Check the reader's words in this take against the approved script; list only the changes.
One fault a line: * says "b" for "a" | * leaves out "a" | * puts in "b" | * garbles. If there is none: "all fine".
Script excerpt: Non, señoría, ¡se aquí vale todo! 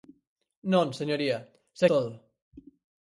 * leaves out "aquí vale"